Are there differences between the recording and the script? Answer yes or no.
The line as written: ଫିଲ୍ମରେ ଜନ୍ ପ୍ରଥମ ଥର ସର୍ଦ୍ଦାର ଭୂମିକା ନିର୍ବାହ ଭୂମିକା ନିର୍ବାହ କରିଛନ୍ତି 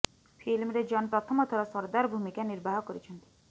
yes